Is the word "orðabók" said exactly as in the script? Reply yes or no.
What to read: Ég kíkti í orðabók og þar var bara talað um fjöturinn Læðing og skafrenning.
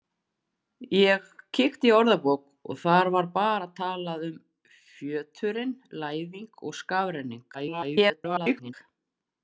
yes